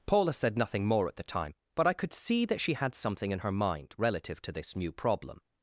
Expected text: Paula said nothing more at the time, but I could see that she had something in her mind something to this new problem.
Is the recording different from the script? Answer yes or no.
yes